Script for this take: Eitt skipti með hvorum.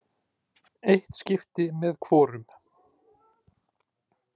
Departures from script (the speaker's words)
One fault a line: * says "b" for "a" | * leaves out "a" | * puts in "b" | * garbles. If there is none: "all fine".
all fine